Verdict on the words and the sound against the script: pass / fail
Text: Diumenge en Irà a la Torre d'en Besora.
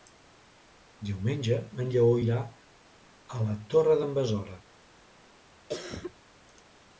fail